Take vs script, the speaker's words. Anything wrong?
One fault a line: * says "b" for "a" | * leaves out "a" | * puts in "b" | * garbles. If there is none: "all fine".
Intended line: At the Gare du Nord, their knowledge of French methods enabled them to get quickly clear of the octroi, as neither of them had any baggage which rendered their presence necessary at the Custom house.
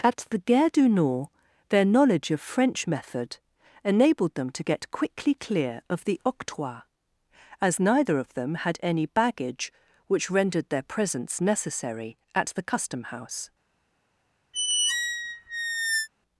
* says "method" for "methods"